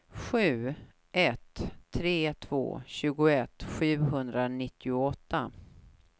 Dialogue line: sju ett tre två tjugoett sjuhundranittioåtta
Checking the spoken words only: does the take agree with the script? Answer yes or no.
yes